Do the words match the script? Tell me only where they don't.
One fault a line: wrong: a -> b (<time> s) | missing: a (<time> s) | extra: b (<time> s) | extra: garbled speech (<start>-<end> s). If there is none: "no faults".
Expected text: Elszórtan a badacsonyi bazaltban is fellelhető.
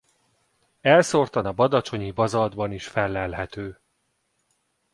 no faults